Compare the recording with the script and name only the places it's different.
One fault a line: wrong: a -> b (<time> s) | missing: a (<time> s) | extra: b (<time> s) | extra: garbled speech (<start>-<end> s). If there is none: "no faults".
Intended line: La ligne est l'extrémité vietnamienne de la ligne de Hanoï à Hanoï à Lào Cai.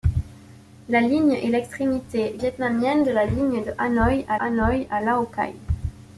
no faults